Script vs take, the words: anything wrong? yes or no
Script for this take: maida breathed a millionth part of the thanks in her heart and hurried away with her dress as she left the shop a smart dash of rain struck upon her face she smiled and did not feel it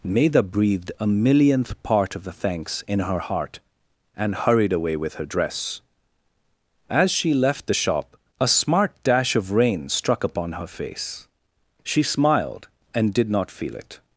no